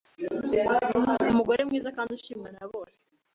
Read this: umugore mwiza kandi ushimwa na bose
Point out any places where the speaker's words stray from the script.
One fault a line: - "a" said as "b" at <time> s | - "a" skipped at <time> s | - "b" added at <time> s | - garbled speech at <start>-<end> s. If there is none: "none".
none